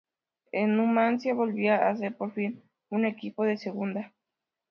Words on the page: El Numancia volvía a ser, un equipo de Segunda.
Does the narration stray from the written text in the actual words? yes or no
yes